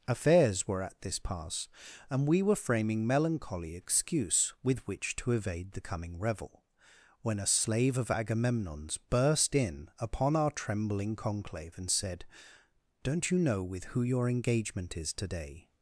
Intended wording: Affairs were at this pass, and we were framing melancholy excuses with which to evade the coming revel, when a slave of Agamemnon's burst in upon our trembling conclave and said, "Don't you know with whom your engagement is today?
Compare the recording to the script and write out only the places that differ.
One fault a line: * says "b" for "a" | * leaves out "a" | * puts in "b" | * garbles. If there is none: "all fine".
* says "excuse" for "excuses"
* says "who" for "whom"